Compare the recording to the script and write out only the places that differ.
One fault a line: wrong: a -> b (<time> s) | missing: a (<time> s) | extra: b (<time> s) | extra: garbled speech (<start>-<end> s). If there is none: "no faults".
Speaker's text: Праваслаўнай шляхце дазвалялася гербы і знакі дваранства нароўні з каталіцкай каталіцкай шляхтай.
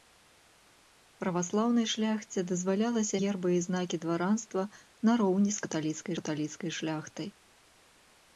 no faults